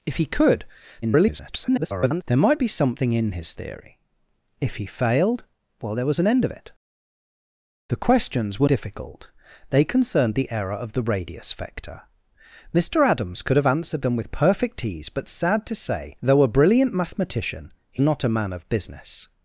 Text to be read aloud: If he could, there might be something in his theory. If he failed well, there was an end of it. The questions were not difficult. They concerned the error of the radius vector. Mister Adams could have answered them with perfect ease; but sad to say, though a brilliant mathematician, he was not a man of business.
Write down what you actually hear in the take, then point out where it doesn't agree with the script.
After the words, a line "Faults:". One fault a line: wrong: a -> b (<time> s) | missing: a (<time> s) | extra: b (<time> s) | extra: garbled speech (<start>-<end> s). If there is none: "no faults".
If he could, [garbled] there might be something in his theory. If he failed well, there was an end of it. The questions were difficult. They concerned the error of the radius vector. Mister Adams could have answered them with perfect ease; but sad to say, though a brilliant mathematician, he not a man of business.
Faults:
extra: garbled speech (1.0-2.2 s)
missing: not (8.7 s)
missing: was (18.0 s)